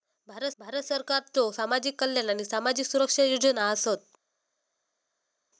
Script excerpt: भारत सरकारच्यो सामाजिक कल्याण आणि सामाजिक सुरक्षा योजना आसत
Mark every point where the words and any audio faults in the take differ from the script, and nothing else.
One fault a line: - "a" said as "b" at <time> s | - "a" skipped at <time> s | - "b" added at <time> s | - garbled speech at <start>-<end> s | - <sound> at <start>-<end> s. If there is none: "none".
- "भारत" added at 0.6 s